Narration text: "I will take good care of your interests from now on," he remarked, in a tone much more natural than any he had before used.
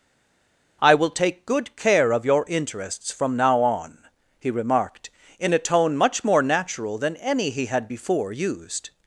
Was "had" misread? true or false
false